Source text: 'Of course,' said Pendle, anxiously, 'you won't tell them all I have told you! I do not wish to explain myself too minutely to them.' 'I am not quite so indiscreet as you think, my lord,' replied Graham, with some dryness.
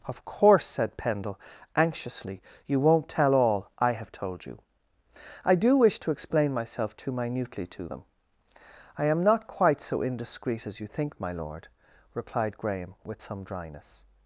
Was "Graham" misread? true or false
false